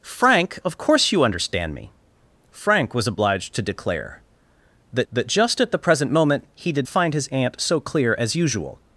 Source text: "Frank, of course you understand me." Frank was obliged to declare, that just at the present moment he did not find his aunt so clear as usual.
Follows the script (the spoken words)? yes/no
no